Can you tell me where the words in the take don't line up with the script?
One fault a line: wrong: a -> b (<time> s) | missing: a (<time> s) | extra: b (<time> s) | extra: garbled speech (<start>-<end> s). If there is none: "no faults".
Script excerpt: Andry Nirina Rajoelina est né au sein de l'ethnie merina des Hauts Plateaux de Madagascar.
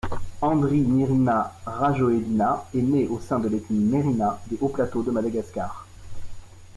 no faults